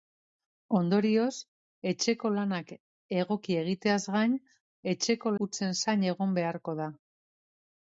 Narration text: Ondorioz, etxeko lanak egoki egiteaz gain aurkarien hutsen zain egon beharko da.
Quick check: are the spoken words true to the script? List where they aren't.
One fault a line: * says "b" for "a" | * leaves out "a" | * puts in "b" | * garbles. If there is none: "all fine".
* says "etxeko" for "aurkarien"